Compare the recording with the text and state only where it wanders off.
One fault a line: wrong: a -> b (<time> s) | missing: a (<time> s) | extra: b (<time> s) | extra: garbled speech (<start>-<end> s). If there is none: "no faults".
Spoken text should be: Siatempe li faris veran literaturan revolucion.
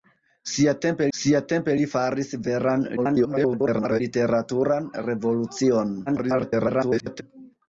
extra: siatempe (1.2 s)
extra: garbled speech (3.0-4.0 s)
extra: garbled speech (6.1-7.2 s)